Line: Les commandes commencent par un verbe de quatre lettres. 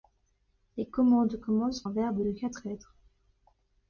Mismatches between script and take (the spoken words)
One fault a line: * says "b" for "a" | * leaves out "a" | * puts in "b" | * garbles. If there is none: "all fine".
* leaves out "par"